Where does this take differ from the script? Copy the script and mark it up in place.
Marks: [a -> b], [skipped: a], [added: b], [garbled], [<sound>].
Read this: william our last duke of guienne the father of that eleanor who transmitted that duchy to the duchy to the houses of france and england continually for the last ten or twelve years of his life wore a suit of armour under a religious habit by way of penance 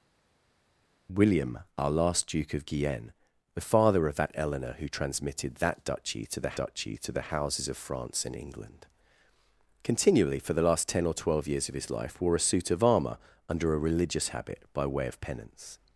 william our last duke of guienne the father of that eleanor who transmitted that duchy to the duchy to the houses of france and england continually for the last ten or twelve years of his life wore a suit of armour under a religious habit by way of penance